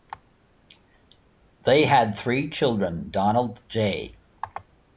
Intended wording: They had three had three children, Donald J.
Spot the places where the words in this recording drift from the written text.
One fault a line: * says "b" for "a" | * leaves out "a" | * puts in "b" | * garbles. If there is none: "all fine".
* leaves out "had three"